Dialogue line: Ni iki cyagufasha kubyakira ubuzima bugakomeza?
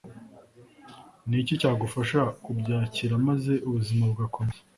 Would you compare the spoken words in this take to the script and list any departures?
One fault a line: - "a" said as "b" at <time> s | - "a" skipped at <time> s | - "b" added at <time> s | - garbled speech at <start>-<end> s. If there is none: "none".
- "maze" added at 3.3 s